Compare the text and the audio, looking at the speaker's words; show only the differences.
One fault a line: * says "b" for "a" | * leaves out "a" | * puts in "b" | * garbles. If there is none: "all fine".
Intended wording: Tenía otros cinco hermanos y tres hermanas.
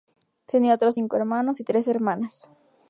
all fine